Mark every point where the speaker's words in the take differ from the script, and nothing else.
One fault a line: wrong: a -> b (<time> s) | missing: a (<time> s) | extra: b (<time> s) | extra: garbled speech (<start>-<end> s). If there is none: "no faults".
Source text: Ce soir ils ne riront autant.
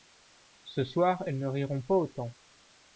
wrong: ils -> elles (1.3 s)
extra: pas (1.8 s)